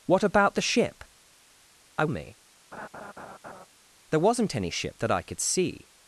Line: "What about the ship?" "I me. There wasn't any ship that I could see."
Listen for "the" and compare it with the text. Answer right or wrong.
right